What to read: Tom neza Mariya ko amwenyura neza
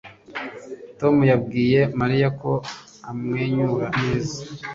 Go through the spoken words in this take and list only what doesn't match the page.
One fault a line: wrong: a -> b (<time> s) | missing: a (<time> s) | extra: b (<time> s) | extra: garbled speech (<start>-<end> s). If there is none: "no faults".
wrong: neza -> yabwiye (1.3 s)